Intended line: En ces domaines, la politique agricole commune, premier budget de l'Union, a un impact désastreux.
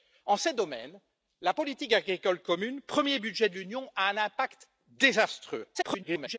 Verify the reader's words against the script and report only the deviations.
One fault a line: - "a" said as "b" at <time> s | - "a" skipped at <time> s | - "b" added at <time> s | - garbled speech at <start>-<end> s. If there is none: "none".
- garbled speech at 5.7-6.4 s